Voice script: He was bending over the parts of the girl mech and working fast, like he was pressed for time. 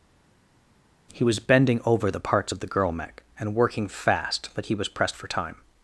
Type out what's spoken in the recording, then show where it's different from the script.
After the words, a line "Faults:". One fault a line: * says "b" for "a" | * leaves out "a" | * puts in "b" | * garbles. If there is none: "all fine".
He was bending over the parts of the girl mech and working fast, but he was pressed for time.
Faults:
* says "but" for "like"